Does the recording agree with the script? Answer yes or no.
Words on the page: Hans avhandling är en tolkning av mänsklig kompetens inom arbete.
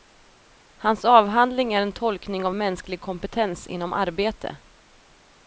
yes